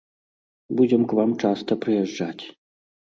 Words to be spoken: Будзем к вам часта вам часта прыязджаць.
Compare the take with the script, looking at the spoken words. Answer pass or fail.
fail